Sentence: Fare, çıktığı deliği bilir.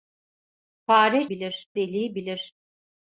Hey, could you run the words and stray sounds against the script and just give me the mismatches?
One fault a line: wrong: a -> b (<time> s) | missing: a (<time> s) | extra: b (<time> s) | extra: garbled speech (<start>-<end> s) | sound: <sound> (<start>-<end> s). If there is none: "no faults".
wrong: çıktığı -> bilir (1.3 s)